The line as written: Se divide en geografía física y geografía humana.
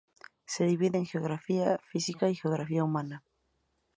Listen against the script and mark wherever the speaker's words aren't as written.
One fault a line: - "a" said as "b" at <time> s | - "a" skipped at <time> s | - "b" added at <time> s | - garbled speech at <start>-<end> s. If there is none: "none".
none